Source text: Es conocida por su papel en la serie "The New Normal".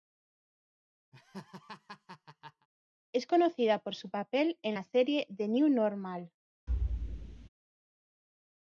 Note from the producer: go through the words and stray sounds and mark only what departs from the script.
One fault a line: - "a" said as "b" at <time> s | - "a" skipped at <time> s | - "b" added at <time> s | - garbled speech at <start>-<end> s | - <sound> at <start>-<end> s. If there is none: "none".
- laugh at 1.1-2.7 s
- thud at 6.7-7.5 s